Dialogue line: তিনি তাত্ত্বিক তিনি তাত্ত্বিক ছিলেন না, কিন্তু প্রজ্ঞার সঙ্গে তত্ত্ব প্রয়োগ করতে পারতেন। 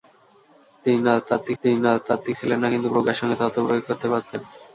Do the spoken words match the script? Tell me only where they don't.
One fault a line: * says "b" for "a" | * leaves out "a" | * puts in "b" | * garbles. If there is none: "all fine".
all fine